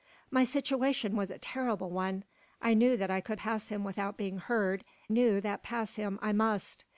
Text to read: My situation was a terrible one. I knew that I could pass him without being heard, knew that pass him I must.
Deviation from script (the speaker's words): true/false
false